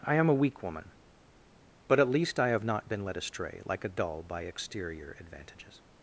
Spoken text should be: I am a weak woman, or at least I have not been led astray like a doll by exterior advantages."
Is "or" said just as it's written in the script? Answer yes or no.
no